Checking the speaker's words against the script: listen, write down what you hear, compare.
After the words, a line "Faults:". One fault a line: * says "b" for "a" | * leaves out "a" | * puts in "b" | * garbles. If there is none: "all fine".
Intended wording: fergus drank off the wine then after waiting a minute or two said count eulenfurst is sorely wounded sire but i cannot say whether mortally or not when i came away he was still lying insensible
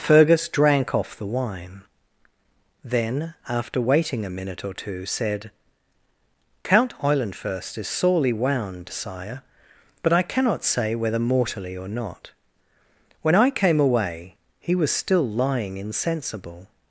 fergus drank off the wine then after waiting a minute or two said count eulenfurst is sorely wound sire but i cannot say whether mortally or not when i came away he was still lying insensible
Faults:
* says "wound" for "wounded"